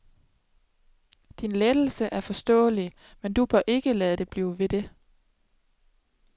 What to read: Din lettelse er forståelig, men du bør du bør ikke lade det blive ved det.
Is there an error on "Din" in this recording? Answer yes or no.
no